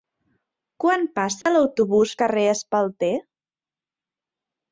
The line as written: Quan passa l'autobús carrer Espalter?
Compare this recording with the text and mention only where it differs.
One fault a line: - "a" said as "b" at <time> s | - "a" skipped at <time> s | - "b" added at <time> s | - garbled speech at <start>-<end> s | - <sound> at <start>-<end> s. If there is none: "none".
- dropout at 1.4-1.5 s